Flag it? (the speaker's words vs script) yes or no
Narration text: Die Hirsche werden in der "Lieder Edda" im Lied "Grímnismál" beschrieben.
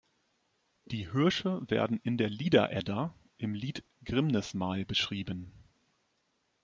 no